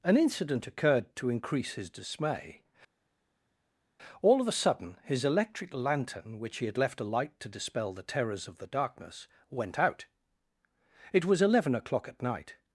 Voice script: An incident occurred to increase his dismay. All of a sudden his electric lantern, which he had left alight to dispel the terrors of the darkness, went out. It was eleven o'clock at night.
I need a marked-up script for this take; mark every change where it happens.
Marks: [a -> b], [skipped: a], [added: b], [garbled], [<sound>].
An incident occurred to increase his dismay. All of a sudden his electric lantern, which he had left alight to dispel the terrors of the darkness, went out. It was eleven o'clock at night.